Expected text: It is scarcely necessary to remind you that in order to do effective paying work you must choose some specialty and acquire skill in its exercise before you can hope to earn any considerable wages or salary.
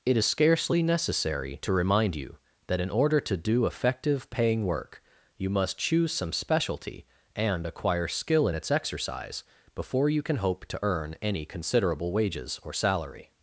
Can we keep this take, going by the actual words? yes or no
yes